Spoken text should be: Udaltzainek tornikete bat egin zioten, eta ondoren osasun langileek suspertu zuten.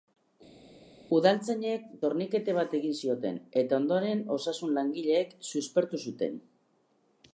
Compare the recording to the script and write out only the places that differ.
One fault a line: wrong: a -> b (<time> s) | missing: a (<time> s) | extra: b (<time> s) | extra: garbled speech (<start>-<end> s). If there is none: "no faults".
no faults